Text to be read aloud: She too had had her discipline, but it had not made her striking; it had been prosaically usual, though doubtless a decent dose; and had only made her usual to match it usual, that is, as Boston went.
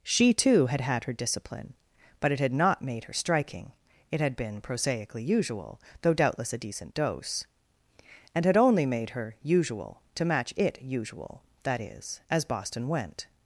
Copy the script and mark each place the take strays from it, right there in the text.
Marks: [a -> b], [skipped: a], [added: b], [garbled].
She too had had her discipline, but it had not made her striking; it had been prosaically usual, though doubtless a decent dose; and had only made her usual to match it usual, that is, as Boston went.